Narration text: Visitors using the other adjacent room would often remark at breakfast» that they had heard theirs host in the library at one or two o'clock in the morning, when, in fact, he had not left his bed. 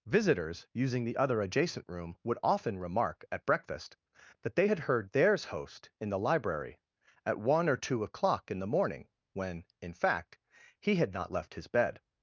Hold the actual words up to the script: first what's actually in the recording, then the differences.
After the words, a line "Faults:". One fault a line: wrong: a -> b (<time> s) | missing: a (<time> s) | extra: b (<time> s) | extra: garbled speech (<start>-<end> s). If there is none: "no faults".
Visitors using the other adjacent room would often remark at breakfast» that they had heard theirs host in the library at one or two o'clock in the morning, when, in fact, he had not left his bed.
Faults:
no faults